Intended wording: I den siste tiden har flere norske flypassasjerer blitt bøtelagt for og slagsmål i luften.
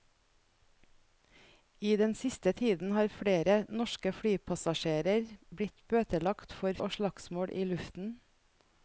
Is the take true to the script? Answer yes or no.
yes